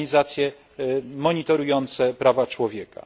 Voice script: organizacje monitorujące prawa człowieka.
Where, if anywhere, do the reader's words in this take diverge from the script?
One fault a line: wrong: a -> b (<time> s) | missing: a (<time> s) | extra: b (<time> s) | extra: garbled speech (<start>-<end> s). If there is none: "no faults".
no faults